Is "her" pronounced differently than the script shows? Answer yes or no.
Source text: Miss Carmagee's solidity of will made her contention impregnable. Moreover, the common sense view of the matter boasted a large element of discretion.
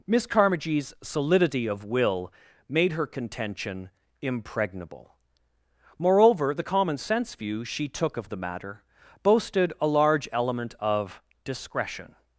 no